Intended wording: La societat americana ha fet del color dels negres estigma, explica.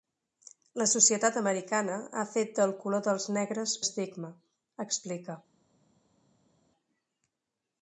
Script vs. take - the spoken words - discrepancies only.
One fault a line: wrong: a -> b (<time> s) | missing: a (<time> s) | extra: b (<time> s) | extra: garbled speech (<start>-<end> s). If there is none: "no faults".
no faults